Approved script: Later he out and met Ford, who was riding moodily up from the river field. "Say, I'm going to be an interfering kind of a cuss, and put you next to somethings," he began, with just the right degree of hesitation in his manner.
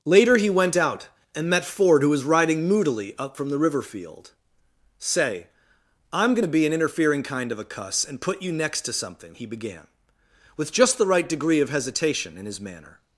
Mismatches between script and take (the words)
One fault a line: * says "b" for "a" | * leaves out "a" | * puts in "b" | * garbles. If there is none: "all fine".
* puts in "went"
* says "something" for "somethings"